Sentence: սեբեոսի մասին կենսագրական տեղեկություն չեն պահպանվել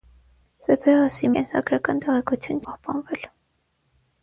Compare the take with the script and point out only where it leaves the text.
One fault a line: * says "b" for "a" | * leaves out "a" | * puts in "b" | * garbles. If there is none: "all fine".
* leaves out "մասին"
* leaves out "չեն"